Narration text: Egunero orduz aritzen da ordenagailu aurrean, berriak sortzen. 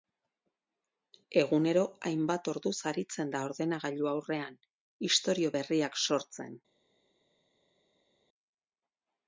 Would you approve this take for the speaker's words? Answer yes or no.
no